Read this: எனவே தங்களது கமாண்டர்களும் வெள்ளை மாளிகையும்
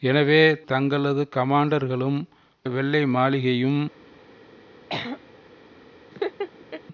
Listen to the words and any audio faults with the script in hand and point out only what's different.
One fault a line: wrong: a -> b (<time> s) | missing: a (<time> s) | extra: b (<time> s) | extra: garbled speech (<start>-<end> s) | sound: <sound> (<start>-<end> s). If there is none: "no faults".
sound: throat clearing (4.9-5.3 s)
sound: laugh (6.1-6.8 s)